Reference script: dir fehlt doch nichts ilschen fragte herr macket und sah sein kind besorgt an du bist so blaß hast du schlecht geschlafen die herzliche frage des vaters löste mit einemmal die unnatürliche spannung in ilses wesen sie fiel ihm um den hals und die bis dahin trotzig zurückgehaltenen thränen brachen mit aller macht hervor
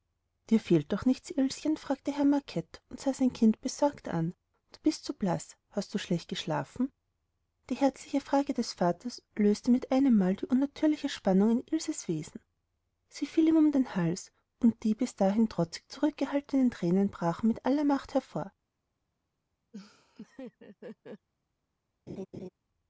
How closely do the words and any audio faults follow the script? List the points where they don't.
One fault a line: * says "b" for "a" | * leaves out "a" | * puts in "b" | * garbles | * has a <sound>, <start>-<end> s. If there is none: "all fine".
* has a laugh, 19.7-21.3 s
* has a laugh, 22.1-22.5 s